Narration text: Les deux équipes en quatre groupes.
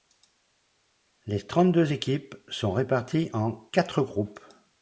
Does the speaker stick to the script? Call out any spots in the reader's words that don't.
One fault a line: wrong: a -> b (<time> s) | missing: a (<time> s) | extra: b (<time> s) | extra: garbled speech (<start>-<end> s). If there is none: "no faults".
extra: trente (1.4 s)
extra: sont réparties (2.5 s)